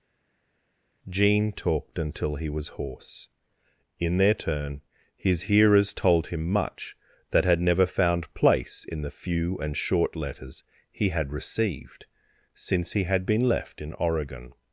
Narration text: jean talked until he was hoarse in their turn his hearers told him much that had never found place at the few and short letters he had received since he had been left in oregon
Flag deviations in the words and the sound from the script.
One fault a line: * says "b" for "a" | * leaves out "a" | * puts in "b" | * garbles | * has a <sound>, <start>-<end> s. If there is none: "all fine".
* says "in" for "at"